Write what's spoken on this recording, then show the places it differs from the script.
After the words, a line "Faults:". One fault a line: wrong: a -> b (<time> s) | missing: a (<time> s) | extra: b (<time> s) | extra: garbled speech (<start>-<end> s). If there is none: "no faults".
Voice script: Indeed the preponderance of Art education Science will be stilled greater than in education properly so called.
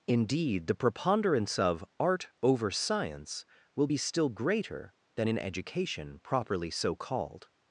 Indeed the preponderance of Art over Science will be still greater than in education properly so called.
Faults:
wrong: education -> over (2.4 s)
wrong: stilled -> still (4.0 s)